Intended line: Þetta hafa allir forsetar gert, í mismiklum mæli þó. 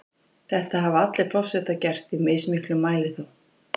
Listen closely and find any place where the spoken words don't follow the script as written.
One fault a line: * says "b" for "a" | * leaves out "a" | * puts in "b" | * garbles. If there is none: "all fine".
all fine